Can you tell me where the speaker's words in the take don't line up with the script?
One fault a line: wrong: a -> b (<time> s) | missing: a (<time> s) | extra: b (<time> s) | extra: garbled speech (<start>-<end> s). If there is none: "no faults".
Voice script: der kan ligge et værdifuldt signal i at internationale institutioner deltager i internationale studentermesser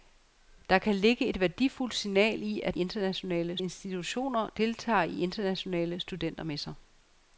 no faults